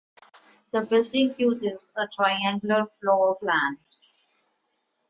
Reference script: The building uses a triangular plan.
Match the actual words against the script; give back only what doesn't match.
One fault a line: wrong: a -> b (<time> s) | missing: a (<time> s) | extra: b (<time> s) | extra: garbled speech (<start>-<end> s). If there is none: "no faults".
extra: floor (3.0 s)